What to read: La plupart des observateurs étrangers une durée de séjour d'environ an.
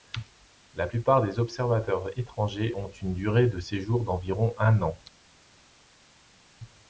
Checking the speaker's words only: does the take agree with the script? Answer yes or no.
no